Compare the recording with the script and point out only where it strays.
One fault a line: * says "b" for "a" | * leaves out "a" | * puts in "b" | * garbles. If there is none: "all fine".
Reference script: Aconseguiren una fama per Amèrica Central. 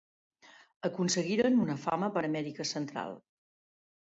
all fine